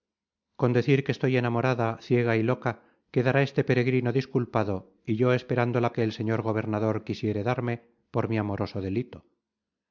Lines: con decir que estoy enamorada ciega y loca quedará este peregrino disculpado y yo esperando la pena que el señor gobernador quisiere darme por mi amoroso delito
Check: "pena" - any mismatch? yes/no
yes